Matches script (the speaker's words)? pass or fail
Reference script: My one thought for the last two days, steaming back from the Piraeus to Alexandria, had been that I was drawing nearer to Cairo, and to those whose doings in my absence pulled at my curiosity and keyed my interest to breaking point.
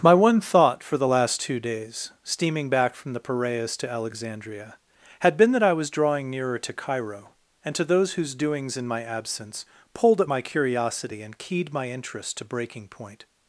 pass